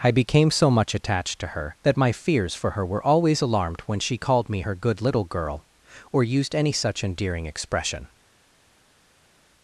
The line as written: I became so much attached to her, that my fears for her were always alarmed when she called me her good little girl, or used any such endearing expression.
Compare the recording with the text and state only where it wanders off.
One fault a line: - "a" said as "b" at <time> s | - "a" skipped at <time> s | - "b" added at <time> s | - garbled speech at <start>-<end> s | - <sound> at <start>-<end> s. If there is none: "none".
none